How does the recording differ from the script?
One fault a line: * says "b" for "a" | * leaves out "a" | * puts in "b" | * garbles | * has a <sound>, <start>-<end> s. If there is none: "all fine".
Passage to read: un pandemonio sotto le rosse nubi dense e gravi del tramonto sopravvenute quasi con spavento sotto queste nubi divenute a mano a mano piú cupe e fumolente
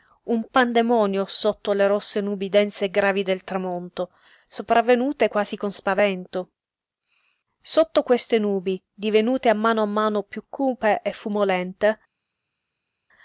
all fine